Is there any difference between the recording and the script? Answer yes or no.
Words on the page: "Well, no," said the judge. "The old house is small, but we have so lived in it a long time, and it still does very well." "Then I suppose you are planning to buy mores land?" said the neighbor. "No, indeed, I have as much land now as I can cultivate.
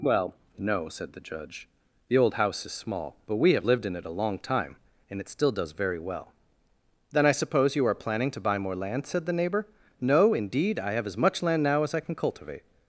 yes